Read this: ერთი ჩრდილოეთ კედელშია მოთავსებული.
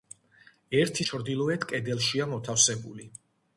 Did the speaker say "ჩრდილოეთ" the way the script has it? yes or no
yes